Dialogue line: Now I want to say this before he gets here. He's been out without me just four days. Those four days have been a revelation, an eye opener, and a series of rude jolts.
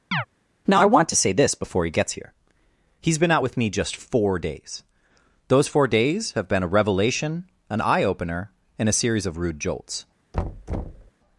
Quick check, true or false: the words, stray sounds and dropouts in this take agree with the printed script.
false